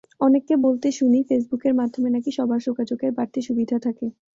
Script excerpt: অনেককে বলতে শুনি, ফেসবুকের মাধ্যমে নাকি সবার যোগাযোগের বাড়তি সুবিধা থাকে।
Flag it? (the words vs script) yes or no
no